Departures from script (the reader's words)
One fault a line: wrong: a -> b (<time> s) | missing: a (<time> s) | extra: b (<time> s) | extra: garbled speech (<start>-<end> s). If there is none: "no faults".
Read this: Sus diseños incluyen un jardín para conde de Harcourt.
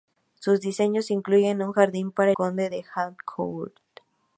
no faults